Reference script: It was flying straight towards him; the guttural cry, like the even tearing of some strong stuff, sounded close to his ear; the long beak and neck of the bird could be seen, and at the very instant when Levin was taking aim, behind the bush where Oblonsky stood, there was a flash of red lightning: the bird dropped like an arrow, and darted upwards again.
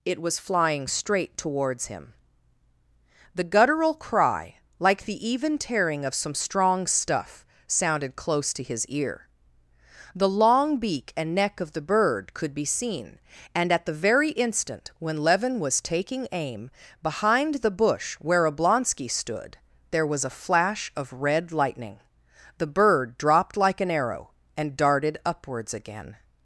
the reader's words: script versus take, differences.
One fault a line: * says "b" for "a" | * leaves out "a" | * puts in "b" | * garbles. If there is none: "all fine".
all fine